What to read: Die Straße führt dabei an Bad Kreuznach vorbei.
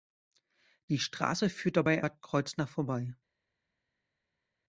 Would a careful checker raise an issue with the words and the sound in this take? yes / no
yes